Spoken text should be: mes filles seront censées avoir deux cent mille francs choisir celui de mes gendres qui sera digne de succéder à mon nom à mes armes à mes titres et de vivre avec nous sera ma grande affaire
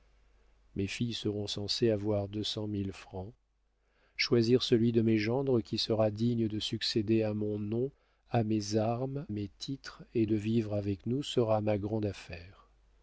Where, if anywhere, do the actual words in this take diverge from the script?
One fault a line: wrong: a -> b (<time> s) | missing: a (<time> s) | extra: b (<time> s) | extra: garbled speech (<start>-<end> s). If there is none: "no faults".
missing: à (9.3 s)